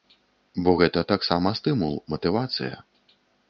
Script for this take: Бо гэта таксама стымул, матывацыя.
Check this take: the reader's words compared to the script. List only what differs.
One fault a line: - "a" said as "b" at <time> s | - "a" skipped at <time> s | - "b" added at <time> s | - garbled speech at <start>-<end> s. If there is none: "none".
none